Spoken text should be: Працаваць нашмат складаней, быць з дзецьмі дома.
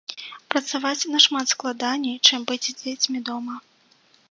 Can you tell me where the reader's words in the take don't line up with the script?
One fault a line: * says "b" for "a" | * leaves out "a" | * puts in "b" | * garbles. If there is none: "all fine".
* puts in "чым"